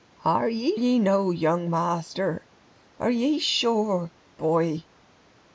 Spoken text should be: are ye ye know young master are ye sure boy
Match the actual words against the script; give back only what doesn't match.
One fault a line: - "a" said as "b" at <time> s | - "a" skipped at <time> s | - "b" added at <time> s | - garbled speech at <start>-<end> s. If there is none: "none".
none